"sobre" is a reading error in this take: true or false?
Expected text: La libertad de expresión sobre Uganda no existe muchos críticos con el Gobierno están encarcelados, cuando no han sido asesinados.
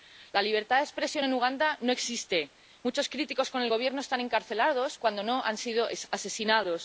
true